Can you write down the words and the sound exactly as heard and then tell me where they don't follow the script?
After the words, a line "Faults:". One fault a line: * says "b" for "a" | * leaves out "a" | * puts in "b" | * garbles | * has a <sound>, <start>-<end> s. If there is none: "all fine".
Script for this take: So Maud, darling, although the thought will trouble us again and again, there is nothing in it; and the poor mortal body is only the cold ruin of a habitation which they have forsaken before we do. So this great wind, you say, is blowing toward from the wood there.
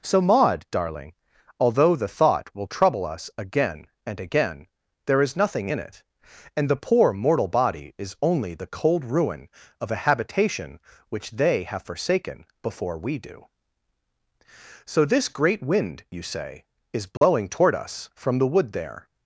So Maud, darling, although the thought will trouble us again and again, there is nothing in it; and the poor mortal body is only the cold ruin of a habitation which they have forsaken before we do. So this great wind, you say, is blowing toward us from the wood there.
Faults:
* has a dropout, 17.2-17.2 s
* puts in "us"